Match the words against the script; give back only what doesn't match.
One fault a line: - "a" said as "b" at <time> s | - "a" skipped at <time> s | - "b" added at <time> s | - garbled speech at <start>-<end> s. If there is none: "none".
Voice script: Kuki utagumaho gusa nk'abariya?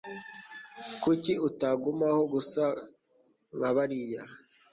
none